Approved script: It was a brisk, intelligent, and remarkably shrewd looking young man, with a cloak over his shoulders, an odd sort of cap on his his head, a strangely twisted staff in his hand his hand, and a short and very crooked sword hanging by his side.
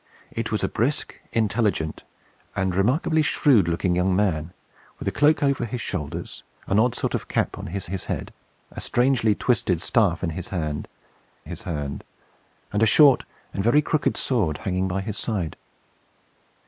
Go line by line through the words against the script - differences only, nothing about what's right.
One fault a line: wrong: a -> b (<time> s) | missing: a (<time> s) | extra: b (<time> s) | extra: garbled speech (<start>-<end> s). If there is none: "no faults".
no faults